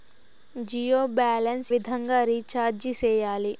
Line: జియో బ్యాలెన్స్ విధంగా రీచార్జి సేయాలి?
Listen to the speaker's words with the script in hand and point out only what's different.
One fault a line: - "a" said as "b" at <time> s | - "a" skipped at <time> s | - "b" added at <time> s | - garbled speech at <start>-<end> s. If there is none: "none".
none